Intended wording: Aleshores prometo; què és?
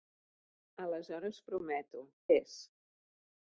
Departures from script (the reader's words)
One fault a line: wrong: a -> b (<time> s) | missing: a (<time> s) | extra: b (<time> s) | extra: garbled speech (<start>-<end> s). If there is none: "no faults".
missing: què (2.0 s)